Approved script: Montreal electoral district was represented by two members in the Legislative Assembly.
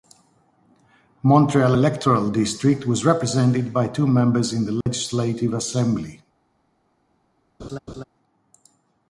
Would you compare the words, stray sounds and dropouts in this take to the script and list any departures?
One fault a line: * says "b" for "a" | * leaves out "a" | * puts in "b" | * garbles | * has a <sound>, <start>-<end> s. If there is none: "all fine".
* has a dropout, 4.8-4.9 s
* has a laugh, 7.6-8.0 s